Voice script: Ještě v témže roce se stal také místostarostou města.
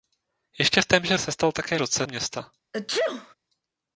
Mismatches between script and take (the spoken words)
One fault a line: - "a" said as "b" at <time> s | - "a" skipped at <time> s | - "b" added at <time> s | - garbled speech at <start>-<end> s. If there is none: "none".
- "roce" skipped at 1.2 s
- "místostarostou" said as "roce" at 1.8 s